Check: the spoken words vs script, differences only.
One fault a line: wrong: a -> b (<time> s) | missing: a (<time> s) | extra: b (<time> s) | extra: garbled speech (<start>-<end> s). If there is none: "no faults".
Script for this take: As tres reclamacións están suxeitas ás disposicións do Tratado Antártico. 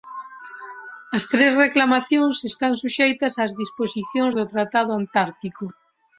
no faults